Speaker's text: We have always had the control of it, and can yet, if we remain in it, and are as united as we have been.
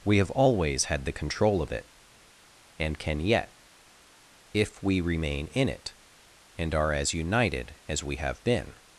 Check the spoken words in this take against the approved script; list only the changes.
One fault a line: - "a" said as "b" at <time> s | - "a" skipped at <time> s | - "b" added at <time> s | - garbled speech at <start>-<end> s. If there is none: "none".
none